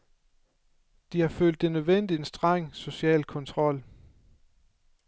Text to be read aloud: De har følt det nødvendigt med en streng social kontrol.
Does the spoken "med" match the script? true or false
false